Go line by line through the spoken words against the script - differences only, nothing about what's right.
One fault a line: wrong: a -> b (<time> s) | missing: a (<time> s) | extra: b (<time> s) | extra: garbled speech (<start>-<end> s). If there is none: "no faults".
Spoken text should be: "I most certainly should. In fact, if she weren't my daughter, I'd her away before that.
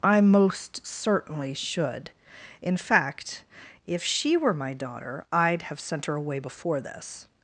wrong: weren't -> were (4.4 s)
extra: have sent (5.6 s)
wrong: that -> this (6.8 s)